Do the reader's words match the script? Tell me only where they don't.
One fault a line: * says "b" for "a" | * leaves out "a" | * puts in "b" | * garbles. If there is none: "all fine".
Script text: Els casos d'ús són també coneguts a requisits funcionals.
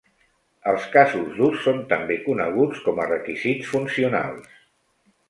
* puts in "com"